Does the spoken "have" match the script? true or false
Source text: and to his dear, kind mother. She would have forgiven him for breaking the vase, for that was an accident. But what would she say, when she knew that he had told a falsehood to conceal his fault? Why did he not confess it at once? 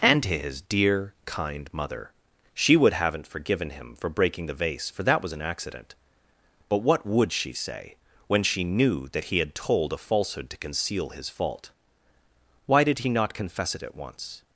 false